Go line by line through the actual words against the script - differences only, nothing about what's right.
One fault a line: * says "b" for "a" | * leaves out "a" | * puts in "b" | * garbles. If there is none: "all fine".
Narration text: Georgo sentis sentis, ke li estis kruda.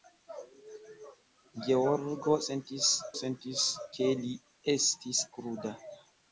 all fine